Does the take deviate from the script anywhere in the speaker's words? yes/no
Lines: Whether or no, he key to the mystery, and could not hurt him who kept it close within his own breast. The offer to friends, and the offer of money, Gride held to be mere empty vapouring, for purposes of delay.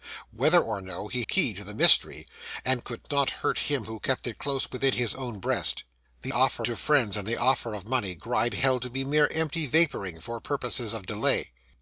no